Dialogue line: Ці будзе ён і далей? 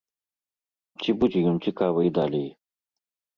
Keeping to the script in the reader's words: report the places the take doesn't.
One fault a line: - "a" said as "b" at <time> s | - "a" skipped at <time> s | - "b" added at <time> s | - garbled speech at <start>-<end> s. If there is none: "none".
- "цікавы" added at 1.7 s